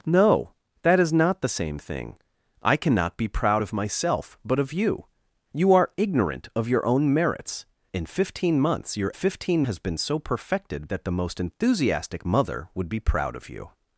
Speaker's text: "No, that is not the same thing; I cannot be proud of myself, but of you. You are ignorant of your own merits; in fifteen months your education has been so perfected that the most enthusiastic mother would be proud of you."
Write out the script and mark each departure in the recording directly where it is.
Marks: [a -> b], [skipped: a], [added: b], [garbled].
"No, that is not the same thing; I cannot be proud of myself, but of you. You are ignorant of your own merits; in fifteen months your [education -> fifteen] has been so perfected that the most enthusiastic mother would be proud of you."